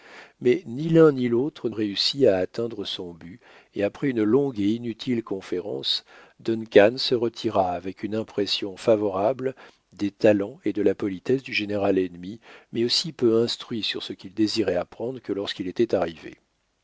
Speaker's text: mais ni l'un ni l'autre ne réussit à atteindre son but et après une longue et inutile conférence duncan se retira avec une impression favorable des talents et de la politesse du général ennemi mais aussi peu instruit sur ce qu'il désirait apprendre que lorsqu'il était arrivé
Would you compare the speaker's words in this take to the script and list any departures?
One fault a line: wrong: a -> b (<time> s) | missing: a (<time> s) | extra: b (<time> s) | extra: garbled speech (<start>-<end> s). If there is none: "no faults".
missing: ne (1.7 s)